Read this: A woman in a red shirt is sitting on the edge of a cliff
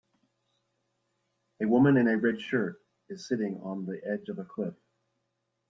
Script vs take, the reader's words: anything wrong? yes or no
no